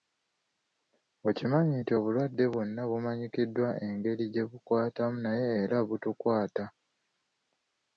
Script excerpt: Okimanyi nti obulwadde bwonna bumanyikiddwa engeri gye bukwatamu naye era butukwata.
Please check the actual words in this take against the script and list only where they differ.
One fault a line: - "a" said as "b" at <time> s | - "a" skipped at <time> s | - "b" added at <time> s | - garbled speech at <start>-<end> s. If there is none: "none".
none